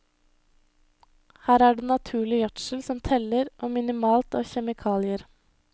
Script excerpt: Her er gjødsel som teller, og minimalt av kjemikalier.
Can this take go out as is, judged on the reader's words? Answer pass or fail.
fail